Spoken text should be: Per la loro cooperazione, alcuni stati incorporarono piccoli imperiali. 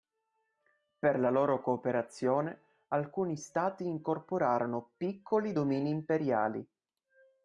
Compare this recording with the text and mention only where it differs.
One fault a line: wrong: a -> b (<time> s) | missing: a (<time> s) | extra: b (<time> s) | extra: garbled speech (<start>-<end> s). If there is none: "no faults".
extra: domini (5.5 s)